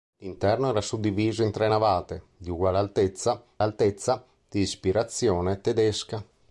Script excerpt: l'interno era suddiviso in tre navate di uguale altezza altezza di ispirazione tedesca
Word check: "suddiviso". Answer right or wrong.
right